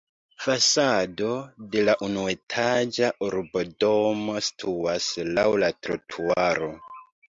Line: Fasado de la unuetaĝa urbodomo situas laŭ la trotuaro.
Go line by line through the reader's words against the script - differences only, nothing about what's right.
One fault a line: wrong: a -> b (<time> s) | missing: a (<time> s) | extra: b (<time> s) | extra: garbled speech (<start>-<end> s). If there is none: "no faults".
no faults